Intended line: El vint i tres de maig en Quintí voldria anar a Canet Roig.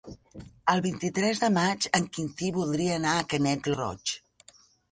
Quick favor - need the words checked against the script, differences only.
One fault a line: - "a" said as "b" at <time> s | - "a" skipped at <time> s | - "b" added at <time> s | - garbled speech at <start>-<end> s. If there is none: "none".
none